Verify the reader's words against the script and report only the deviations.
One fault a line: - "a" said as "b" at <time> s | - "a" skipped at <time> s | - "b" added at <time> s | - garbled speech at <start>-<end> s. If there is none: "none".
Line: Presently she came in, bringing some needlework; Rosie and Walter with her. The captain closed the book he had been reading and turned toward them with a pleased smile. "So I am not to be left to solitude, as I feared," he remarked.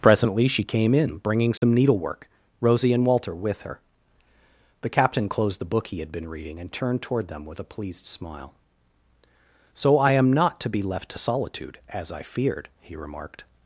none